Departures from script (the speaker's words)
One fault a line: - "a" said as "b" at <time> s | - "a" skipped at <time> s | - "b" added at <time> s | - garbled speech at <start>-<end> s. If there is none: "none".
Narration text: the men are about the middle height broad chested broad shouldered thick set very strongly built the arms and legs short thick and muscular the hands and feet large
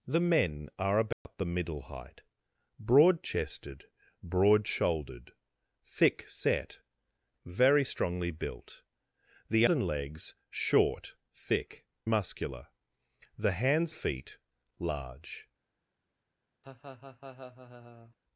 - "arms" skipped at 9.7 s
- "and" skipped at 11.9 s
- "and" skipped at 13.9 s